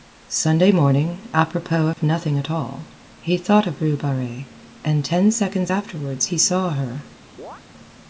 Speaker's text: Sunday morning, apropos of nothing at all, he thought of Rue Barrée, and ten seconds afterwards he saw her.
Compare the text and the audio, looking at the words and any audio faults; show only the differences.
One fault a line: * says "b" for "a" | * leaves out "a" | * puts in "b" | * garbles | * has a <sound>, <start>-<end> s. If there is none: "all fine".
* has a dropout, 1.9-2.0 s
* has a chirp, 7.4-7.6 s